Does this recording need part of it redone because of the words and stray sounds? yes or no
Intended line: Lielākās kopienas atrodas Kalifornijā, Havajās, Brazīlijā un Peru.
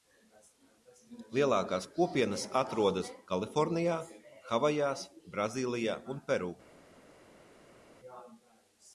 no